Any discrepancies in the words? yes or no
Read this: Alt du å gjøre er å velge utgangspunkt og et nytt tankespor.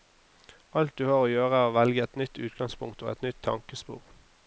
yes